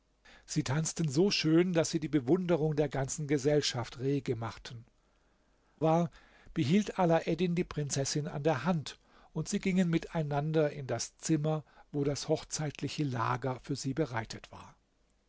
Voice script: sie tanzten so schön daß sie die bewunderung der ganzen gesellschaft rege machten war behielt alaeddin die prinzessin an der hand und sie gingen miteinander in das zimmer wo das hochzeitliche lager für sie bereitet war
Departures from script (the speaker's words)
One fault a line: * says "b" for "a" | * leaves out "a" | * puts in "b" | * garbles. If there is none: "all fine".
all fine